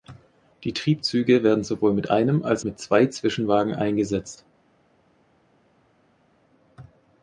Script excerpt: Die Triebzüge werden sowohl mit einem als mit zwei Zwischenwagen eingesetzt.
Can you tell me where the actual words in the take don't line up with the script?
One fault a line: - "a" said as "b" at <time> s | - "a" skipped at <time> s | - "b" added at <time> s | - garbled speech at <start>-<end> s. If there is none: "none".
none